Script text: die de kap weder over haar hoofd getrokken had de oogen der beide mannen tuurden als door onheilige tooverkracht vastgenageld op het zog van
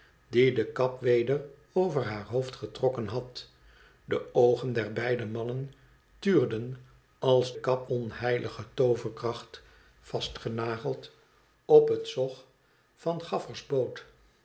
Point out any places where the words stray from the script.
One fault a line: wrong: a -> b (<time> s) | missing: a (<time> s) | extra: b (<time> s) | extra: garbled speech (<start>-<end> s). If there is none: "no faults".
wrong: door -> kap (7.5 s)